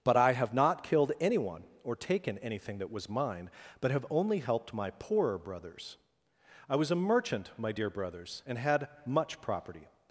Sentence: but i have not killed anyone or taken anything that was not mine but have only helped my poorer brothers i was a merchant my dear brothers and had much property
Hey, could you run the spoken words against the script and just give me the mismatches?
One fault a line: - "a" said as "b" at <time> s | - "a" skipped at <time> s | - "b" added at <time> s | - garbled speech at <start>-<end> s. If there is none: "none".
- "not" skipped at 3.1 s